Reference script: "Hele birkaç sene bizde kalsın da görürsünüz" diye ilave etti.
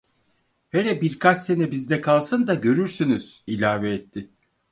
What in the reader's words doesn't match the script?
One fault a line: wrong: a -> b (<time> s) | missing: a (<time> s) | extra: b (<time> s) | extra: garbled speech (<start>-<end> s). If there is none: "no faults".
missing: diye (3.5 s)